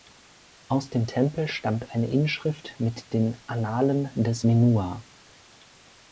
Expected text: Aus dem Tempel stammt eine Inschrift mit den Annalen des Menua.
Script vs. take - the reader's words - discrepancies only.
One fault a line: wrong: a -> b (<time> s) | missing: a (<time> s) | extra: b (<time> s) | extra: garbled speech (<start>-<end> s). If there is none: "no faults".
no faults